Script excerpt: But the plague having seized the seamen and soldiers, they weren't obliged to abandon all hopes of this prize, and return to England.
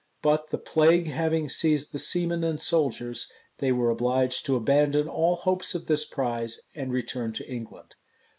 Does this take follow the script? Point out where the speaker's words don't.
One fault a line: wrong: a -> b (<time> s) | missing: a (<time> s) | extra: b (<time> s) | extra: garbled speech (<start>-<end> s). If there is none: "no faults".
wrong: weren't -> were (3.7 s)